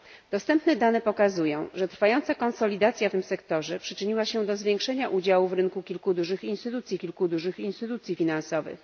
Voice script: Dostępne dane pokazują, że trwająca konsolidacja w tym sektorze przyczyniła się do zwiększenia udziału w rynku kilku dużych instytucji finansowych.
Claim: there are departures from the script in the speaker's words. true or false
true